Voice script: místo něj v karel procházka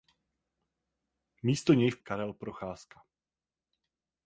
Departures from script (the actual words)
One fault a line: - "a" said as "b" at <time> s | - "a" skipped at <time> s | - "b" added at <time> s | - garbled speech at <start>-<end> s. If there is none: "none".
none